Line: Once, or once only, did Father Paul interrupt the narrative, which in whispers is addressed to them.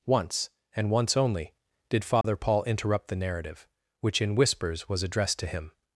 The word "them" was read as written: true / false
false